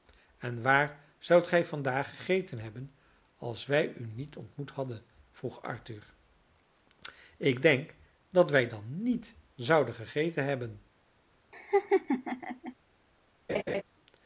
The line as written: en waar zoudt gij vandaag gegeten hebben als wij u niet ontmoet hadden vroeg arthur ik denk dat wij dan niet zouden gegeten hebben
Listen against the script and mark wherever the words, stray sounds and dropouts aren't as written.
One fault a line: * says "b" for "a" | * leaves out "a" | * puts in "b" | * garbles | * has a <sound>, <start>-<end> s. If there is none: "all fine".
* has a laugh, 11.5-12.7 s
* has a laugh, 13.5-13.8 s